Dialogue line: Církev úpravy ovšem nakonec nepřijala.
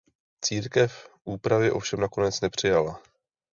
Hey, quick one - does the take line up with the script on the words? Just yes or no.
yes